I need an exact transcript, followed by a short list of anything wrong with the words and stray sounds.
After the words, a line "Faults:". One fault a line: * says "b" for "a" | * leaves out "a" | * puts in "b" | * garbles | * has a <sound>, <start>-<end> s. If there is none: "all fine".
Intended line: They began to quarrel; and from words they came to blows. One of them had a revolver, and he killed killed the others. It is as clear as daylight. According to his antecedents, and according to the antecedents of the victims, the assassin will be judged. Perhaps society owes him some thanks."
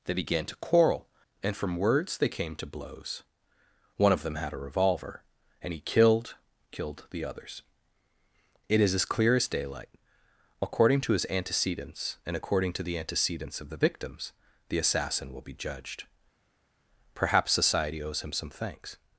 They began to quarrel; and from words they came to blows. One of them had a revolver, and he killed killed the others. It is as clear as daylight. According to his antecedents, and according to the antecedents of the victims, the assassin will be judged. Perhaps society owes him some thanks."
Faults:
all fine